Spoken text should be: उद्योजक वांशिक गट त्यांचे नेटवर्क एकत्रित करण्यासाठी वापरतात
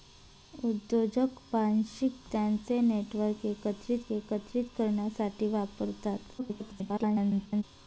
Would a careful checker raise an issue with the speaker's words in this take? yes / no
yes